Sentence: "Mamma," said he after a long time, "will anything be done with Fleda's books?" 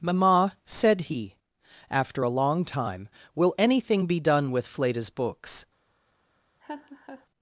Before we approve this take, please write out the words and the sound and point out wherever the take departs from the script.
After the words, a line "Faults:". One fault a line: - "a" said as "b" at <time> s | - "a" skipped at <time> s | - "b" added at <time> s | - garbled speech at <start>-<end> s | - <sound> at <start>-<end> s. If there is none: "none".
"Mamma," said he after a long time, "will anything be done with Fleda's books?"
Faults:
- laugh at 6.6-7.3 s